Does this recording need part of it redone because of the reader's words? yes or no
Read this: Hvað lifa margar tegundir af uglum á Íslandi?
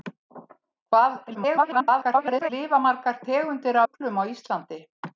yes